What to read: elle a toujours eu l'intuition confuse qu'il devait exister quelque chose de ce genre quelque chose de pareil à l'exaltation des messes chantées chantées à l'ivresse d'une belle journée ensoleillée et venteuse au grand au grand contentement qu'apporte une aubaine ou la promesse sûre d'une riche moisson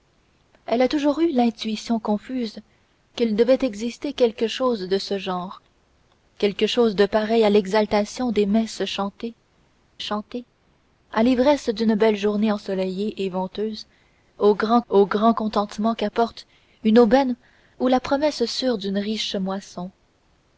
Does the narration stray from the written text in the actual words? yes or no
no